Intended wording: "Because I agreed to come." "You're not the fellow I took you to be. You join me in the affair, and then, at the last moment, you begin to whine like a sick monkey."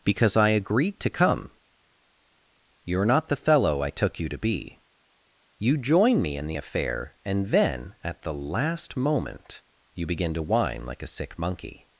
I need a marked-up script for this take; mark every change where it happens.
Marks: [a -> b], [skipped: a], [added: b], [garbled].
"Because I agreed to come." "You're not the fellow I took you to be. You join me in the affair, and then, at the last moment, you begin to whine like a sick monkey."